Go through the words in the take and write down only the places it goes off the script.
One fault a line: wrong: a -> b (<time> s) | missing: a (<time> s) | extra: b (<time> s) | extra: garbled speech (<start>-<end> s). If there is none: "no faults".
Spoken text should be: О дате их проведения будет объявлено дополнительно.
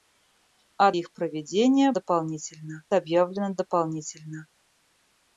missing: дате (0.9 s)
wrong: будет -> дополнительно (1.9 s)